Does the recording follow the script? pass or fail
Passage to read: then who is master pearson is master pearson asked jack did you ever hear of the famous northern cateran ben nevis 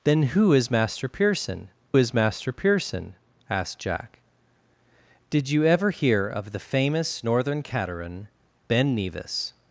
pass